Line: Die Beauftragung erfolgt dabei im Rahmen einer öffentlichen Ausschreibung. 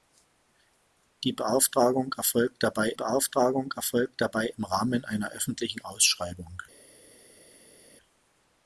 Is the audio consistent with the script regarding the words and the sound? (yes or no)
no